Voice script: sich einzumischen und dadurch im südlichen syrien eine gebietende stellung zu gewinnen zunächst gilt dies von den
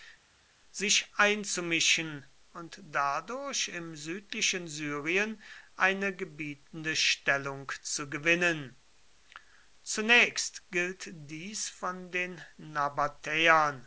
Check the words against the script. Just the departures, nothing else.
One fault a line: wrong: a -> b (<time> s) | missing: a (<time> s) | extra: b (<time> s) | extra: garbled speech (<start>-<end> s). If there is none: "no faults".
no faults